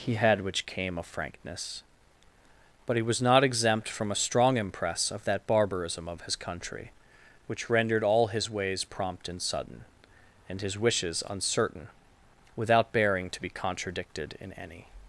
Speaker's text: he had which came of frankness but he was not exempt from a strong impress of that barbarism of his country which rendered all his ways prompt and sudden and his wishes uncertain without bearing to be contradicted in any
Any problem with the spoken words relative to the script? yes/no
no